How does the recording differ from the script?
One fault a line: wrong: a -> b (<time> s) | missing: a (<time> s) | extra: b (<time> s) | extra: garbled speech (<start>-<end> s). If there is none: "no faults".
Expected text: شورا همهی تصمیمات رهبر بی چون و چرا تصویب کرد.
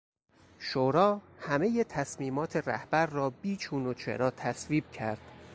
extra: را (3.0 s)